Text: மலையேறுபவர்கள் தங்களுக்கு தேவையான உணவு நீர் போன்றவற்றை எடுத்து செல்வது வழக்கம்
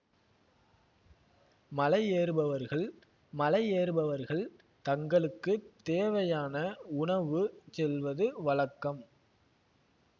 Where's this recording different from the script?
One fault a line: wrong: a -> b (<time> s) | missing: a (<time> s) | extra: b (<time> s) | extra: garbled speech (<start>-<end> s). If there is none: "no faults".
extra: மலையேறுபவர்கள் (3.3 s)
missing: நீர் போன்றவற்றை எடுத்து (7.4 s)